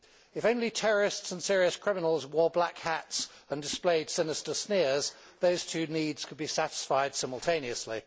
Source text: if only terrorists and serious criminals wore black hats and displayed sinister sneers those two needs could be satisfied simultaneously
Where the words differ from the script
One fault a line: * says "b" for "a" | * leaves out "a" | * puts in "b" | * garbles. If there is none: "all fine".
all fine